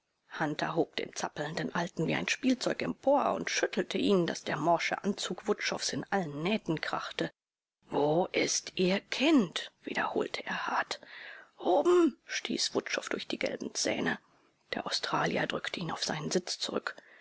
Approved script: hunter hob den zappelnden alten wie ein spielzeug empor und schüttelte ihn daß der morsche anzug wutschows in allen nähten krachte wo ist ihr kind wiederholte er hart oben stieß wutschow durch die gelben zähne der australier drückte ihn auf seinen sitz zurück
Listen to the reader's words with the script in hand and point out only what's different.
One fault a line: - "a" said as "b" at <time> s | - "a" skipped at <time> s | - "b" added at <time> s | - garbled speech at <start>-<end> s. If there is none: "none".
none